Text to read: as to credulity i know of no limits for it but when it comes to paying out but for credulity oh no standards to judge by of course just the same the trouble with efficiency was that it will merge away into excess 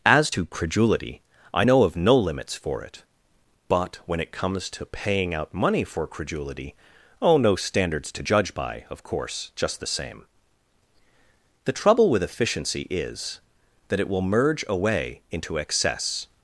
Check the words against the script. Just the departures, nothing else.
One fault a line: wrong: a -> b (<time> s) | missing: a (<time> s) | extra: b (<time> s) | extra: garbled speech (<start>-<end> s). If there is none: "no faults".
wrong: but -> money (5.5 s)
wrong: was -> is (12.9 s)